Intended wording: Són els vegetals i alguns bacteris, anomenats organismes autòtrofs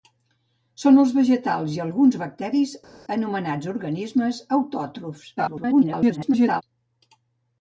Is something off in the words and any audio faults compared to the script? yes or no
yes